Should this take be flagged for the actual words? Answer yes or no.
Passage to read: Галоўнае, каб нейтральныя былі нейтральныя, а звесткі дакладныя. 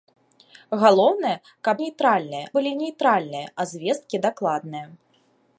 no